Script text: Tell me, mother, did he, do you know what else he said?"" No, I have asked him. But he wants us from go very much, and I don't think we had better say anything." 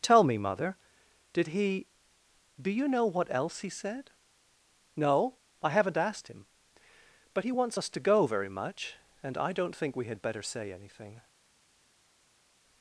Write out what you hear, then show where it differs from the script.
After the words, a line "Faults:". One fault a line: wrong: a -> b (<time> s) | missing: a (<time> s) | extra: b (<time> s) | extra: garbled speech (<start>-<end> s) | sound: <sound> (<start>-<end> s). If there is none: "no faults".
Tell me, mother, did he, do you know what else he said?"" No, I haven't asked him. But he wants us to go very much, and I don't think we had better say anything."
Faults:
wrong: have -> haven't (5.7 s)
wrong: from -> to (7.9 s)